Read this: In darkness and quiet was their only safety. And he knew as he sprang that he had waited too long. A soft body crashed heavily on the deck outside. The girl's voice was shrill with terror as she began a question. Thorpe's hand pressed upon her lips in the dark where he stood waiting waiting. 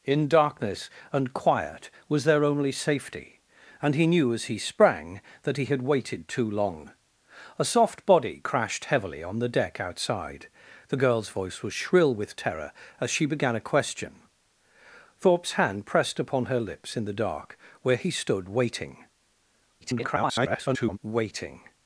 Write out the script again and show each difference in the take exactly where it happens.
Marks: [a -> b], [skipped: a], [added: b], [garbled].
In darkness and quiet was their only safety. And he knew as he sprang that he had waited too long. A soft body crashed heavily on the deck outside. The girl's voice was shrill with terror as she began a question. Thorpe's hand pressed upon her lips in the dark where he stood waiting [garbled] waiting.